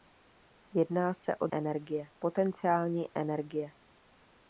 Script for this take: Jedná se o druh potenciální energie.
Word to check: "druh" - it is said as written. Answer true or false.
false